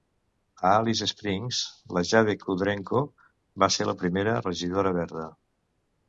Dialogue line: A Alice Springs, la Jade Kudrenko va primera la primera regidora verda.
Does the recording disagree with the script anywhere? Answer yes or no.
yes